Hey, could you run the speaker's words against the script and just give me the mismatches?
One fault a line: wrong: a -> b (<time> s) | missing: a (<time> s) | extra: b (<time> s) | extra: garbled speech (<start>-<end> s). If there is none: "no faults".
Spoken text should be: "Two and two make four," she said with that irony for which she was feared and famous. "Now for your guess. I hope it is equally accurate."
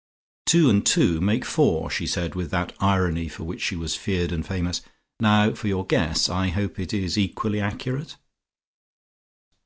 no faults